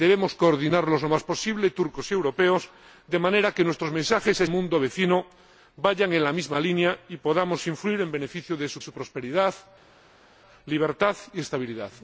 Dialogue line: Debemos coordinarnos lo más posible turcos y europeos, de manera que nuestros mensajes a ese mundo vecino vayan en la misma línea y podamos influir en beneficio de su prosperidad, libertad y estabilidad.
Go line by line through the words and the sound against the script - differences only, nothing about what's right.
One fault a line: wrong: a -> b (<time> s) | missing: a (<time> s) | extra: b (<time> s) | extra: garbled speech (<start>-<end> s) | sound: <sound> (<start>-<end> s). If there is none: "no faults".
missing: ese (4.5 s)
extra: su (8.8 s)